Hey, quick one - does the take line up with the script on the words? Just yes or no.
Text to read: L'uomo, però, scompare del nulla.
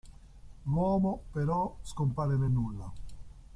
no